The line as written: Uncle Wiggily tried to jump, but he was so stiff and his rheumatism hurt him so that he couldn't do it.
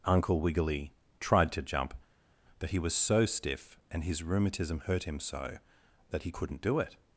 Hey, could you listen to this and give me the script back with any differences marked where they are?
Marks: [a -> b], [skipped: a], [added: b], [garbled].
Uncle Wiggily tried to jump, but he was so stiff and his rheumatism hurt him so that he couldn't do it.